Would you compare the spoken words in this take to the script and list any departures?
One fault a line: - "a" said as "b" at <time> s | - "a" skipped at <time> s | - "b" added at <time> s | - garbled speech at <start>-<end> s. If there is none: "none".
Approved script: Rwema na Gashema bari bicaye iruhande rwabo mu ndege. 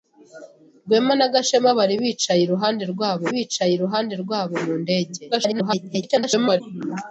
- "bicaye iruhande rwabo" added at 3.3 s
- garbled speech at 5.3-6.6 s